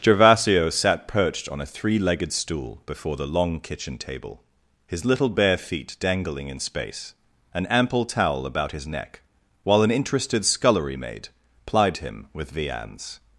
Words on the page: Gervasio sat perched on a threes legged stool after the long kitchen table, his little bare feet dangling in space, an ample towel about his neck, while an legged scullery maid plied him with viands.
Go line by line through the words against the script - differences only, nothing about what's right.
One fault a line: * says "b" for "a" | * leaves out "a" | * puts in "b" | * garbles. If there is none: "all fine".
* says "three" for "threes"
* says "before" for "after"
* says "interested" for "legged"